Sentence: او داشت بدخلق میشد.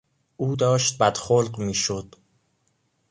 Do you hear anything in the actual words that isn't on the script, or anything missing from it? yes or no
no